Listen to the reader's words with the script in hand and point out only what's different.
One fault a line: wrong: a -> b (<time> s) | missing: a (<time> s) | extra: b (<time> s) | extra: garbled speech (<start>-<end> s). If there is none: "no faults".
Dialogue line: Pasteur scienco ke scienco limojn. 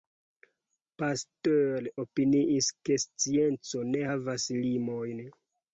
wrong: scienco -> opiniis (2.0 s)
extra: ne havas (3.9 s)